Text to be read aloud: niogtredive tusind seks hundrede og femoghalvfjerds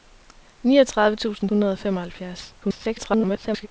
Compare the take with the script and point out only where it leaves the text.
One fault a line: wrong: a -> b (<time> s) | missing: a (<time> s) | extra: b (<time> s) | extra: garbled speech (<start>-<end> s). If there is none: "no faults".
missing: seks (1.5 s)
extra: garbled speech (2.6-3.7 s)